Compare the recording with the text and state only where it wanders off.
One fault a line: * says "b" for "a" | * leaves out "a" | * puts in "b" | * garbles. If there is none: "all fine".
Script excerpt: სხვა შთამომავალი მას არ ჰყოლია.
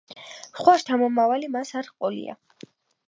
all fine